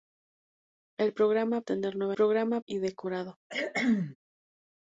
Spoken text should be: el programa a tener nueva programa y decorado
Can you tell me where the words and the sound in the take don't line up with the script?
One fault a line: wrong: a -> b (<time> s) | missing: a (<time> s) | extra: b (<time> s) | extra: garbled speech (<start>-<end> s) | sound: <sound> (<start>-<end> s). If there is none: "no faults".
sound: cough (3.5-4.2 s)